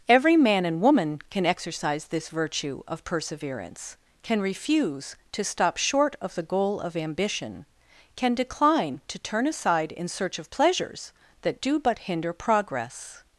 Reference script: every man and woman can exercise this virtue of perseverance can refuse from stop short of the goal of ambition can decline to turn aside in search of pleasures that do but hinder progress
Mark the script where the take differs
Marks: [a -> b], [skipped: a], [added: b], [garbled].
every man and woman can exercise this virtue of perseverance can refuse [from -> to] stop short of the goal of ambition can decline to turn aside in search of pleasures that do but hinder progress